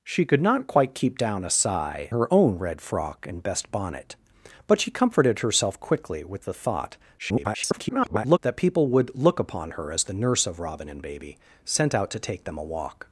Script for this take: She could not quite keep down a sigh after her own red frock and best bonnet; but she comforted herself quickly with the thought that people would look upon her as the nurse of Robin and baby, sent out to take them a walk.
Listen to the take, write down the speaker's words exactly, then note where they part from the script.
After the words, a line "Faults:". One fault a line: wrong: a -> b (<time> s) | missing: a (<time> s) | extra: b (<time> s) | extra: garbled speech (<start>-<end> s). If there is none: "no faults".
She could not quite keep down a sigh her own red frock and best bonnet; but she comforted herself quickly with the thought [garbled] that people would look upon her as the nurse of Robin and baby, sent out to take them a walk.
Faults:
missing: after (2.1 s)
extra: garbled speech (7.2-8.4 s)